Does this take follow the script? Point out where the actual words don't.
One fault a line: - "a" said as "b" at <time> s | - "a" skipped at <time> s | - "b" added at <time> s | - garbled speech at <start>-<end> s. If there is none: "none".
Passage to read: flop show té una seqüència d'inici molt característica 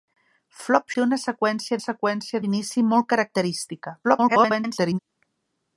- "show" skipped at 0.9 s
- "seqüència" added at 1.8 s
- garbled speech at 4.0-5.0 s